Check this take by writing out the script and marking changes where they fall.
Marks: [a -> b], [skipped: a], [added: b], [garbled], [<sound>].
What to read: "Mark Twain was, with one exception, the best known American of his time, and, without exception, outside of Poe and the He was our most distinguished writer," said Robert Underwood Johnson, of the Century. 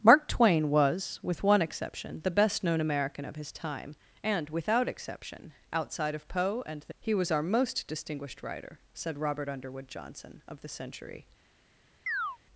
"Mark Twain was, with one exception, the best known American of his time, and, without exception, outside of Poe and the He was our most distinguished writer," said Robert Underwood Johnson, of the Century. [chirp]